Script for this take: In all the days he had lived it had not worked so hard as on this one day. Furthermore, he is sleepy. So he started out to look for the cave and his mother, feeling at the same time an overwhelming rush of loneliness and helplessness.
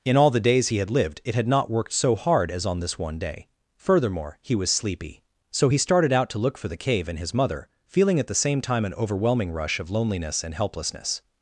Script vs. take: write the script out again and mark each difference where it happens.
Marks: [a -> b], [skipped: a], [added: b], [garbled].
In all the days he had lived it had not worked so hard as on this one day. Furthermore, he [is -> was] sleepy. So he started out to look for the cave and his mother, feeling at the same time an overwhelming rush of loneliness and helplessness.